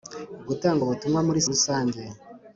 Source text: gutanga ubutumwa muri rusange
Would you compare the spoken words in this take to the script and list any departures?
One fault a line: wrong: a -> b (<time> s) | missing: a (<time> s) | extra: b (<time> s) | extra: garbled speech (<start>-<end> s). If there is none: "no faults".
no faults